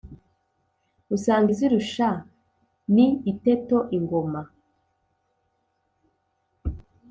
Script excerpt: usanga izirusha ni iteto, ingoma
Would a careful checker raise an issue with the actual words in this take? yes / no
no